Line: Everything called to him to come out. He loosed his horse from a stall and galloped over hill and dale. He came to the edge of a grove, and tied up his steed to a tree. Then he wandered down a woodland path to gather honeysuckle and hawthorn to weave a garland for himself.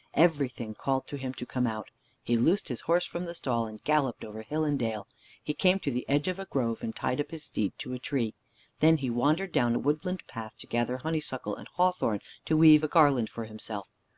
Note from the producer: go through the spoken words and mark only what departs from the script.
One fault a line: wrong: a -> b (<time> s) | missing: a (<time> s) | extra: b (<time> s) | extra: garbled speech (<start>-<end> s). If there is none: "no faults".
wrong: a -> the (3.2 s)